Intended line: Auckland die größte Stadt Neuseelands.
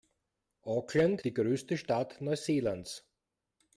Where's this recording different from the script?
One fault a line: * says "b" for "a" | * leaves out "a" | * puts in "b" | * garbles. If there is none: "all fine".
all fine